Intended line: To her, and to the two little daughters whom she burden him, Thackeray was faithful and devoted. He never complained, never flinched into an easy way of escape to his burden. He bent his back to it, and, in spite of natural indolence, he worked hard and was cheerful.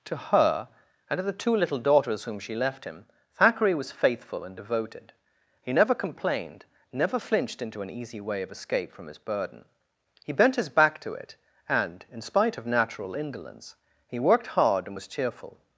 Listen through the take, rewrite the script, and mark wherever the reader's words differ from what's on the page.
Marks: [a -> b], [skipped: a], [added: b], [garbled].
To her, and to the two little daughters whom she [burden -> left] him, Thackeray was faithful and devoted. He never complained, never flinched into an easy way of escape [to -> from] his burden. He bent his back to it, and, in spite of natural indolence, he worked hard and was cheerful.